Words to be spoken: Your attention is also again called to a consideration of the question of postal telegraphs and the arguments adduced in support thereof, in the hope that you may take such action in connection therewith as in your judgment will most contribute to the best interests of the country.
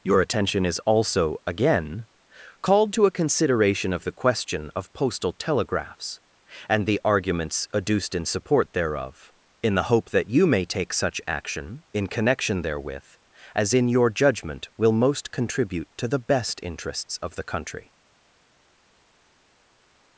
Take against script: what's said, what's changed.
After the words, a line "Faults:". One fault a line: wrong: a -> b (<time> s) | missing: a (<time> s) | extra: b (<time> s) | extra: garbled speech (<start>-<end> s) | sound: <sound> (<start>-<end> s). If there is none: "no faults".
Your attention is also again called to a consideration of the question of postal telegraphs and the arguments adduced in support thereof, in the hope that you may take such action in connection therewith as in your judgment will most contribute to the best interests of the country.
Faults:
no faults